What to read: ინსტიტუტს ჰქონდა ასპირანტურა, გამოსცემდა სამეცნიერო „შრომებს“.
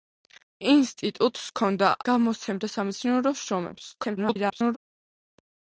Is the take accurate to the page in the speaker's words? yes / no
no